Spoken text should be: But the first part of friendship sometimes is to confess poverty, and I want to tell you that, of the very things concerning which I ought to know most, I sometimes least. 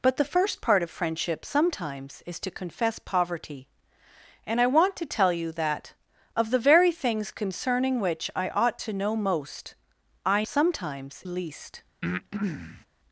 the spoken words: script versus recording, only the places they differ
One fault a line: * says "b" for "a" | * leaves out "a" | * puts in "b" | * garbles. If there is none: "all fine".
all fine